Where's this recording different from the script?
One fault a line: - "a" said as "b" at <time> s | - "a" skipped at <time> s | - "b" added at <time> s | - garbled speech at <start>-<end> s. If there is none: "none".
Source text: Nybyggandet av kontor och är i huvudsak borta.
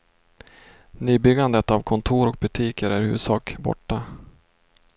- "butiker" added at 2.4 s